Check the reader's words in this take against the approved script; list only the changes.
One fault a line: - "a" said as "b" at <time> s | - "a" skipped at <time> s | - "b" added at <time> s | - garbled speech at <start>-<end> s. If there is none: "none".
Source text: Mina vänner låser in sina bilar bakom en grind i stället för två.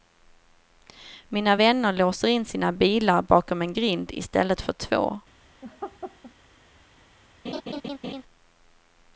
none